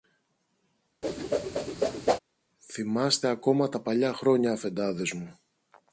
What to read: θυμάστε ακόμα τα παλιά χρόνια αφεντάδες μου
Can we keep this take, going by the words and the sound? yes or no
no